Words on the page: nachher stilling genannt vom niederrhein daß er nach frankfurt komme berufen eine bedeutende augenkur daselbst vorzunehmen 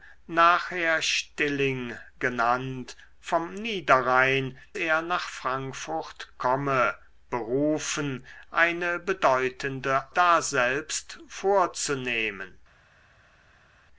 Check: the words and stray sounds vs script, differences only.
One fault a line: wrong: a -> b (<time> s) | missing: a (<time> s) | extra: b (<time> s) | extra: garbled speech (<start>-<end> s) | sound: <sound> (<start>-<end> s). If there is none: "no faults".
missing: daß (4.6 s)
missing: augenkur (10.0 s)